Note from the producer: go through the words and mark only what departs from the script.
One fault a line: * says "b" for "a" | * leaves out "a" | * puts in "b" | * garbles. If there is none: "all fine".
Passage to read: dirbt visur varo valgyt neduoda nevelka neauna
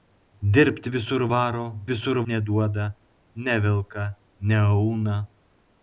* says "visur" for "valgyt"